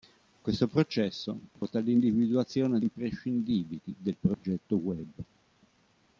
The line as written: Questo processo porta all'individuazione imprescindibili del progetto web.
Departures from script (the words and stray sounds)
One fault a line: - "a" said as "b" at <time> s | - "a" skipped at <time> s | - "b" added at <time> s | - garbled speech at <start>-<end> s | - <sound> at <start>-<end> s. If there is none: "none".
- dropout at 1.6-1.6 s
- dropout at 4.3-4.4 s